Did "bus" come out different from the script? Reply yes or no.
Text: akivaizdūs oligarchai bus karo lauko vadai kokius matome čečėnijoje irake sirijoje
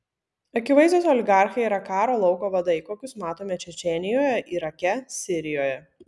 yes